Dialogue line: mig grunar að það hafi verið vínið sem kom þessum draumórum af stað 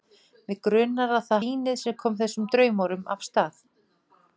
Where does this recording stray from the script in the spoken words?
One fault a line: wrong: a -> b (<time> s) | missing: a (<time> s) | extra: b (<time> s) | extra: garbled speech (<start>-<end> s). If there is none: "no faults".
missing: hafi verið (1.4 s)